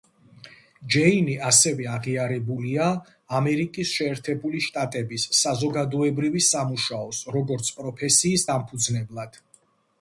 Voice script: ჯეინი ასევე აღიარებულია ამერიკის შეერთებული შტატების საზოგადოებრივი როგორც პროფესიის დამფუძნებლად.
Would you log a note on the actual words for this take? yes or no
yes